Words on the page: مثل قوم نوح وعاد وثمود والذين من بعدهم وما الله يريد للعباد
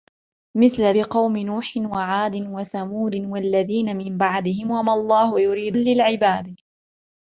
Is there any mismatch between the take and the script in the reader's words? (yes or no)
no